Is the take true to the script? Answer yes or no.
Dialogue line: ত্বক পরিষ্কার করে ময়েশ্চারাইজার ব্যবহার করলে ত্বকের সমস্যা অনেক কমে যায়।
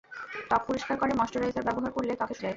no